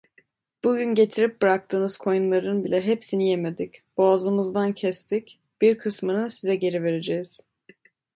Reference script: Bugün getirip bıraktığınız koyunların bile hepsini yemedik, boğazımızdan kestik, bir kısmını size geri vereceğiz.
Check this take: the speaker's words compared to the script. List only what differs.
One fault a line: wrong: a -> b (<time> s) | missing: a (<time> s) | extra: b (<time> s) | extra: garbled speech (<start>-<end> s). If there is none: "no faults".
no faults